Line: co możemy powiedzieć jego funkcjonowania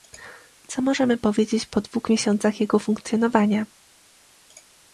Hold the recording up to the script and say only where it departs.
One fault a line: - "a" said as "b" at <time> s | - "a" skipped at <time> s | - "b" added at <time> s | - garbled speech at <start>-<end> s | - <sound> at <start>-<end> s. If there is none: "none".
- "po dwóch miesiącach" added at 1.6 s